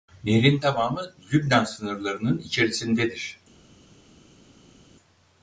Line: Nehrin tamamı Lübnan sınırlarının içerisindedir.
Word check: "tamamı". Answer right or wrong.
right